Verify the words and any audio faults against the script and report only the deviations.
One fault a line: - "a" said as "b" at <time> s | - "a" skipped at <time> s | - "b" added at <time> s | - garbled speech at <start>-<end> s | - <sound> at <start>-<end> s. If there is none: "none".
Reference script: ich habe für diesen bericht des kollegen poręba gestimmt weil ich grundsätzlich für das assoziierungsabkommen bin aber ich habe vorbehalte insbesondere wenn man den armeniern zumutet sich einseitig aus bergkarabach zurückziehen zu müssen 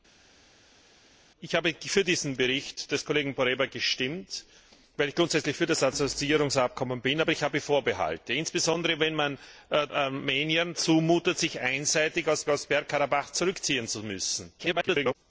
- "den" skipped at 9.4 s
- "aus" added at 12.5 s
- garbled speech at 14.6-15.1 s